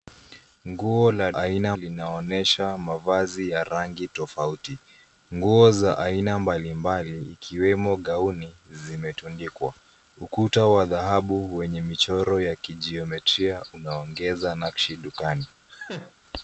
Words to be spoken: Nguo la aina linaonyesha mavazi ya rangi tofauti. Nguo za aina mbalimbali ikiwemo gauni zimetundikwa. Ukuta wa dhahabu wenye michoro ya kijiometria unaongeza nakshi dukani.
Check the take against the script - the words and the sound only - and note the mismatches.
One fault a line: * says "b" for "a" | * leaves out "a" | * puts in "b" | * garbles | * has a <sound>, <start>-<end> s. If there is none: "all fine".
* has a laugh, 15.7-16.1 s